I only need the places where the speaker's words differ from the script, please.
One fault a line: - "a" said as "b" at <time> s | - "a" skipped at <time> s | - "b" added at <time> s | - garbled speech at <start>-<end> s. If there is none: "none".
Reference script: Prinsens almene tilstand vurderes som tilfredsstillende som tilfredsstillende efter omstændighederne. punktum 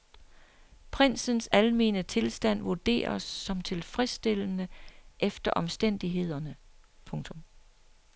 - "som tilfredsstillende" skipped at 4.7 s